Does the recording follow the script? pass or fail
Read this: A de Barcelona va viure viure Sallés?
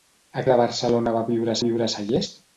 pass